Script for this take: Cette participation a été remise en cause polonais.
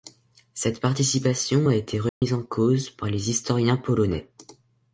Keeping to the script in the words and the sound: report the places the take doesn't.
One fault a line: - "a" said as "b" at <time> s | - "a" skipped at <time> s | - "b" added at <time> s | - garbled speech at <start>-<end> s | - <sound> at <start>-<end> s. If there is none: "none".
- dropout at 2.1-2.2 s
- "par les historiens" added at 2.9 s